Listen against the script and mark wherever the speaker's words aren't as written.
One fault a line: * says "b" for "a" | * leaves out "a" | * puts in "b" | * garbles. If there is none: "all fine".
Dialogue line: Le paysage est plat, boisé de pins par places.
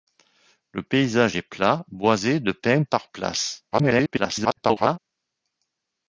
* garbles